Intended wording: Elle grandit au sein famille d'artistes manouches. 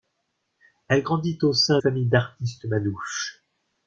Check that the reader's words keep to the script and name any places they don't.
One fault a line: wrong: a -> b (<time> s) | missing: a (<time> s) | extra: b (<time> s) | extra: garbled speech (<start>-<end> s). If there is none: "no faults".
no faults